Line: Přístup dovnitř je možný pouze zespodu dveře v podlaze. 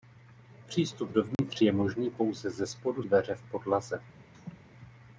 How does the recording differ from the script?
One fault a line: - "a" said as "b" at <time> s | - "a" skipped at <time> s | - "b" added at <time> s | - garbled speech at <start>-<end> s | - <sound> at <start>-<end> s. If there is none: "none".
- dropout at 1.3-1.4 s
- laugh at 4.3-4.6 s